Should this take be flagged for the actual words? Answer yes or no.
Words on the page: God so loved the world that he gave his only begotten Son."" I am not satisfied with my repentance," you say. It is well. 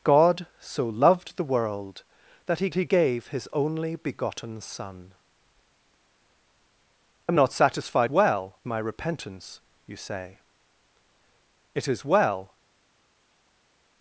yes